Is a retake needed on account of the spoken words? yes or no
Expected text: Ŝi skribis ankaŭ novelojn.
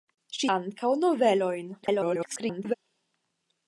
yes